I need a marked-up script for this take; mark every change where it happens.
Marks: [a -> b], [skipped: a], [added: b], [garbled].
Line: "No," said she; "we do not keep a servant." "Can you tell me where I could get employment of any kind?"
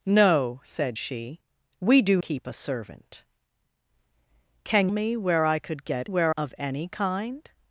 "No," said she; "we do [skipped: not] keep a servant." "Can [skipped: you tell] me where I could get [employment -> where] of any kind?"